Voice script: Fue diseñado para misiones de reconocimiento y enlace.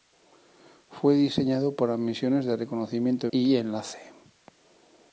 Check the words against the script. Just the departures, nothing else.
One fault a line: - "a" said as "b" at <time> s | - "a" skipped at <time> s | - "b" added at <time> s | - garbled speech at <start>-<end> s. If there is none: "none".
none